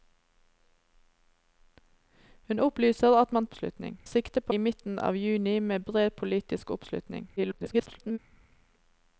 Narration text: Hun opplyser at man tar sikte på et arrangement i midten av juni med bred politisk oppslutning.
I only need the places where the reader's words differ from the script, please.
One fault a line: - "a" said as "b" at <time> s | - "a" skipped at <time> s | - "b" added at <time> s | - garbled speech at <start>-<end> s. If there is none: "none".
- "tar" said as "oppslutning" at 3.5 s
- "et arrangement" skipped at 4.5 s
- garbled speech at 7.4-8.2 s